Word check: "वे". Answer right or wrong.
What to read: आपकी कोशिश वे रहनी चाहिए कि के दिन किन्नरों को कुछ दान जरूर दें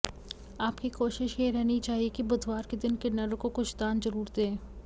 wrong